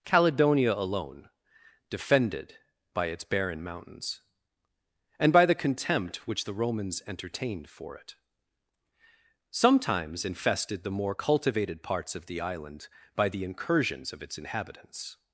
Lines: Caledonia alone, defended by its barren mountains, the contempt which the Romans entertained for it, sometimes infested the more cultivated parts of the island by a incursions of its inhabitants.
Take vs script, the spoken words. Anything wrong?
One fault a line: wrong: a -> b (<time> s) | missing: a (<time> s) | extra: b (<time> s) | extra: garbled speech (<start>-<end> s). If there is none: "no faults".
extra: and by (5.2 s)
wrong: a -> the (13.3 s)